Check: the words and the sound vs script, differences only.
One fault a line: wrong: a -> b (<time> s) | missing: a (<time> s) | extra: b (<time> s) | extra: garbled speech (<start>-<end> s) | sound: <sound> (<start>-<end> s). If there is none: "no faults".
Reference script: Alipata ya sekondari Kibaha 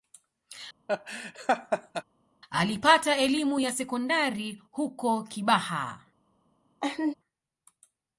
sound: laugh (0.9-2.0 s)
extra: elimu (3.2 s)
extra: huko (4.7 s)
sound: laugh (6.8-7.1 s)